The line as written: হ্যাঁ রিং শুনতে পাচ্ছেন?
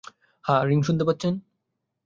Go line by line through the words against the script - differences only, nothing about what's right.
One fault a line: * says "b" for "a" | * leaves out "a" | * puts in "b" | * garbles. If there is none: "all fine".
all fine